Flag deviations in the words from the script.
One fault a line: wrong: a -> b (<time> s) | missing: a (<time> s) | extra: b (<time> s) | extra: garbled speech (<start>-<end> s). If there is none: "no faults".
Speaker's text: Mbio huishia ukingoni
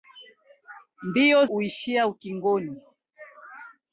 no faults